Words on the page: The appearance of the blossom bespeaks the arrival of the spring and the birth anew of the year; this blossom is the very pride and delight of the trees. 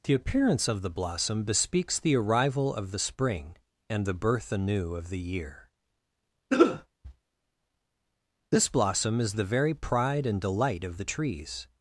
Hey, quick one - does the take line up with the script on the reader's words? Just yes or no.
yes